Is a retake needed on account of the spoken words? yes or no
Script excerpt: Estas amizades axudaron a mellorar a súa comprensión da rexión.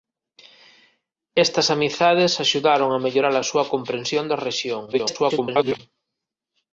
yes